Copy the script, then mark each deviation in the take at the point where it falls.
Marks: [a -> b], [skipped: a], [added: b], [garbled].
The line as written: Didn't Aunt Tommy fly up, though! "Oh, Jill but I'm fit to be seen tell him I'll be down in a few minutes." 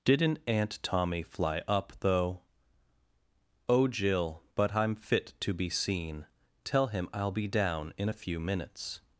Didn't Aunt Tommy fly up, though! "Oh, Jill but I'm fit to be seen tell him I'll be down in a few minutes."